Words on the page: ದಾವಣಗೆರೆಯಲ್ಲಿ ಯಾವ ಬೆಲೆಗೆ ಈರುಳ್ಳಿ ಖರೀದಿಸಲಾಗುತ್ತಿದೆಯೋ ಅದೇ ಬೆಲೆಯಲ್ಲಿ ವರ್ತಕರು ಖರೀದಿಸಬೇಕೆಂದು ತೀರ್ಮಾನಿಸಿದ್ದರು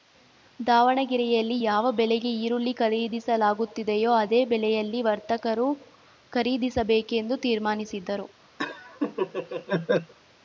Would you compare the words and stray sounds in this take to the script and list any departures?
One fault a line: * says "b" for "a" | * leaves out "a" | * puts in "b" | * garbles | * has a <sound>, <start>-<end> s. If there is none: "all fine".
* has a laugh, 8.6-10.1 s